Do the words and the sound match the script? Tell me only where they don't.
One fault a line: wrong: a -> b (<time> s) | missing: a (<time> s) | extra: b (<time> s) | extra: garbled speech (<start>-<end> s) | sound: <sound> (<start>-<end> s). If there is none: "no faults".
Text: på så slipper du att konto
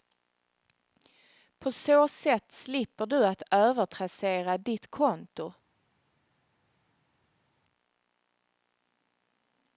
extra: sätt (2.1 s)
extra: övertrassera ditt (3.5 s)